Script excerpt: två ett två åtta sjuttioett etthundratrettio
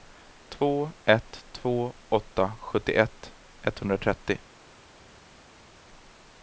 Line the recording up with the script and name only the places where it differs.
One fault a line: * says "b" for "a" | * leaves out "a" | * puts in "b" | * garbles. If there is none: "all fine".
all fine